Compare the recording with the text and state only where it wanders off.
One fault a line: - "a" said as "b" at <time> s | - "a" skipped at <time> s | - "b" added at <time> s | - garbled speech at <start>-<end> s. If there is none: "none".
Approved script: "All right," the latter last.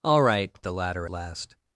none